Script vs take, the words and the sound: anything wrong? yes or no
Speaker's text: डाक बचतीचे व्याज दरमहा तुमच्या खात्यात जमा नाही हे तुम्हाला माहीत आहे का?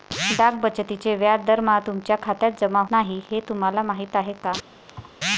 yes